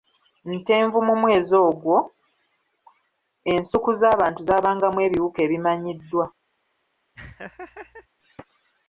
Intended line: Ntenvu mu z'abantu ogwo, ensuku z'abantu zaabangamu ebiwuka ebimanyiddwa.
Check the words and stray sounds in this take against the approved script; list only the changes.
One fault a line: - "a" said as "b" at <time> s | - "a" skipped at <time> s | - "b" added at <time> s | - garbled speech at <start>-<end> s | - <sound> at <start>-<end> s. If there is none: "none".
- "z'abantu" said as "mwezi" at 1.2 s
- laugh at 7.2-8.1 s